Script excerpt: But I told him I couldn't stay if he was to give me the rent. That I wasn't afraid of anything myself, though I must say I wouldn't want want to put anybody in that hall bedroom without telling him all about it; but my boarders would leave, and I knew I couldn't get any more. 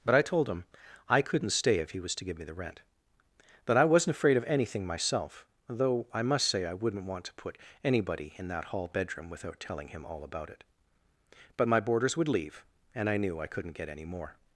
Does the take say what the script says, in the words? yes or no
no